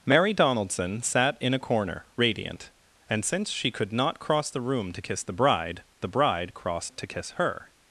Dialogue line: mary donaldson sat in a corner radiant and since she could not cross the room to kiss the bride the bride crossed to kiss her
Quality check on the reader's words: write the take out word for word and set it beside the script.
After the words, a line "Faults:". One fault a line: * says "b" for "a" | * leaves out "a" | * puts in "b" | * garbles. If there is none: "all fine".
mary donaldson sat in a corner radiant and since she could not cross the room to kiss the bride the bride crossed to kiss her
Faults:
all fine